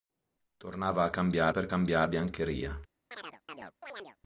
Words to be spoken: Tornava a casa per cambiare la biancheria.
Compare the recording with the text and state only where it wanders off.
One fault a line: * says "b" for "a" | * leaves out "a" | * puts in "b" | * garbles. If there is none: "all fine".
* says "cambiare" for "casa"
* leaves out "la"